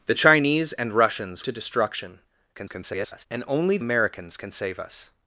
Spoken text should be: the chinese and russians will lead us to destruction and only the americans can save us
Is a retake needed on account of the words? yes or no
yes